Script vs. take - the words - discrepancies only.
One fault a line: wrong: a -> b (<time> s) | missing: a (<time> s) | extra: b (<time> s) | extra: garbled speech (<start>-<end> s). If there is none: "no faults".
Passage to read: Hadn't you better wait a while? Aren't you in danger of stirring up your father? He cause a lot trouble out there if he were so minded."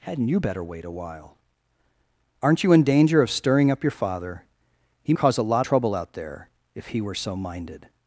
no faults